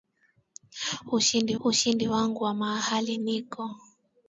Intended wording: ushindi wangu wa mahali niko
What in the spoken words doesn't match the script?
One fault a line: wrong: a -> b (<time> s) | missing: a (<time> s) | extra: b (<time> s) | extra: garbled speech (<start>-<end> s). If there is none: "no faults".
extra: ushindi (1.6 s)